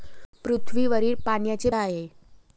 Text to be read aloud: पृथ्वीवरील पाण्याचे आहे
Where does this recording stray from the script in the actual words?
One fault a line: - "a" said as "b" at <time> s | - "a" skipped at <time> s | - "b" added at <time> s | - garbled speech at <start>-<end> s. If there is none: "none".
none